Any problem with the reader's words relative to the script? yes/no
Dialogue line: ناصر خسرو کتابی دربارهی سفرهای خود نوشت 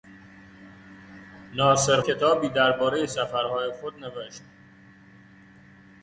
yes